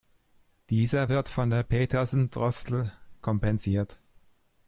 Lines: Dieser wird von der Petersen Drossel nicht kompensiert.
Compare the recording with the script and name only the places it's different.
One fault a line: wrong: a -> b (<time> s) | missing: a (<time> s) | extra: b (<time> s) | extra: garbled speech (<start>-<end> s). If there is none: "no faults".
missing: nicht (2.9 s)